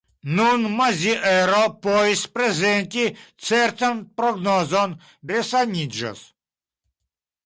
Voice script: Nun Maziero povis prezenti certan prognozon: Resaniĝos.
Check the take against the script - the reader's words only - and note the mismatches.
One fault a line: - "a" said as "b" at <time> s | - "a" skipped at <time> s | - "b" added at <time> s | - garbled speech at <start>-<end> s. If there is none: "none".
none